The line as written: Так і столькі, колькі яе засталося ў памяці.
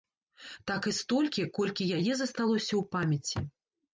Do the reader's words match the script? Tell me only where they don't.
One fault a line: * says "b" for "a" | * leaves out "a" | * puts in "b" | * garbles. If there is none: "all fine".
all fine